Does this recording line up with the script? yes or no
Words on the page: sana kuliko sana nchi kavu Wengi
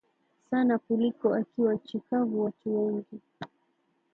no